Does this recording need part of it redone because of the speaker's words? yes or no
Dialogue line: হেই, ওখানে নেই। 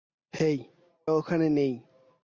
no